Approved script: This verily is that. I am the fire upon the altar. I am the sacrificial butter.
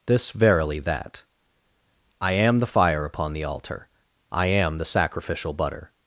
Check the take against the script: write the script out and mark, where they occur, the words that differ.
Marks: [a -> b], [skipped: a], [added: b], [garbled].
This verily [skipped: is] that. I am the fire upon the altar. I am the sacrificial butter.